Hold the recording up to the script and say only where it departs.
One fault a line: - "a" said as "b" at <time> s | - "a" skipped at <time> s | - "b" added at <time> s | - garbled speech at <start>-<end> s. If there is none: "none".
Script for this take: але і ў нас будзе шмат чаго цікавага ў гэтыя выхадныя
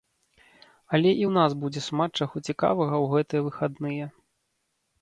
none